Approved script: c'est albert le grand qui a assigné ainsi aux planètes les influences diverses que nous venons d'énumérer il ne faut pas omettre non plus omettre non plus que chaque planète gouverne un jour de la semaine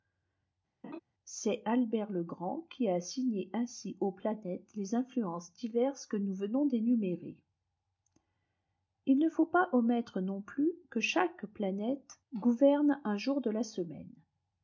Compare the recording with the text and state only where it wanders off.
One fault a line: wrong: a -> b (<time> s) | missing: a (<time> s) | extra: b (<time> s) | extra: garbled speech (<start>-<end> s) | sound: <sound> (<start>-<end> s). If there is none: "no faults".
sound: laugh (0.8-1.0 s)
missing: omettre non plus (10.7 s)